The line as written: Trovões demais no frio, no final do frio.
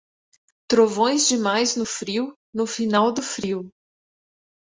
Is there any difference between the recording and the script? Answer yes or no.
no